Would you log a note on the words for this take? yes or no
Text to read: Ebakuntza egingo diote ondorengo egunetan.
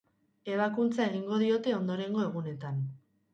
no